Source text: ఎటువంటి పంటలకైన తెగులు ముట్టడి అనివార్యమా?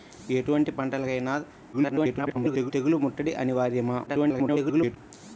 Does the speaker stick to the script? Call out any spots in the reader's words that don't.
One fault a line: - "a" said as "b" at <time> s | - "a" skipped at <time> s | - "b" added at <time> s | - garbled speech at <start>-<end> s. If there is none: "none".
- garbled speech at 1.7-2.7 s
- garbled speech at 4.1-5.0 s